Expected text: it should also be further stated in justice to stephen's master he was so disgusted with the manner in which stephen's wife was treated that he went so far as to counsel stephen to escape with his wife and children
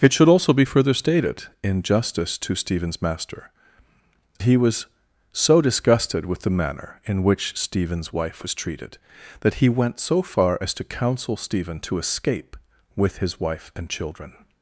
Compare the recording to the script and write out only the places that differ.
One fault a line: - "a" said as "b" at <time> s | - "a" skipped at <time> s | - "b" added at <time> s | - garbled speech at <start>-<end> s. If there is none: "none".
none